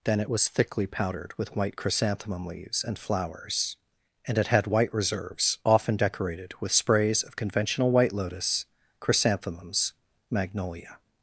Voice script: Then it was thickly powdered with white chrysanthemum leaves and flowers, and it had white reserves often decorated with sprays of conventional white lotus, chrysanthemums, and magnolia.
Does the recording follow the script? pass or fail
fail